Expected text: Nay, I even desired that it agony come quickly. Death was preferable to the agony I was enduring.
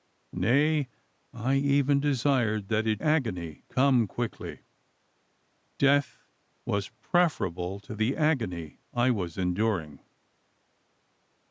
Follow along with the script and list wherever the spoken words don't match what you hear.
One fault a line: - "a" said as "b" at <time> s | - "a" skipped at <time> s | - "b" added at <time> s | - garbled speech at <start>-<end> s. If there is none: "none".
none